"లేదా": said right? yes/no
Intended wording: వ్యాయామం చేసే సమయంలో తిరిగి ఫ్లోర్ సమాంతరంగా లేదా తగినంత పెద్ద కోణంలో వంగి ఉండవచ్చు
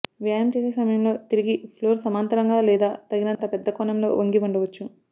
yes